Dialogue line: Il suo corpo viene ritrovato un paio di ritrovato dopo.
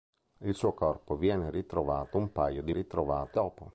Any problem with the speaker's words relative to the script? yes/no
no